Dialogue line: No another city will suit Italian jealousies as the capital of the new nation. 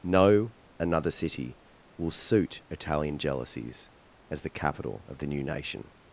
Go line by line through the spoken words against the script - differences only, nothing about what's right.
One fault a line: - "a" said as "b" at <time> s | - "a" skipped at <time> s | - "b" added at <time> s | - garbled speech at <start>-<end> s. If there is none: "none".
none